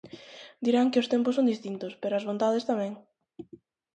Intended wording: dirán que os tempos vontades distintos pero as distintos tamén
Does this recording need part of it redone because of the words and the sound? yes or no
yes